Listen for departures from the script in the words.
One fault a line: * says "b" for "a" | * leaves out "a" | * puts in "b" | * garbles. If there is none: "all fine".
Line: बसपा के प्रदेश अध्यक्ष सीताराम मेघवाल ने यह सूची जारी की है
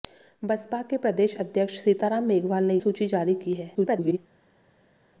* leaves out "यह"
* garbles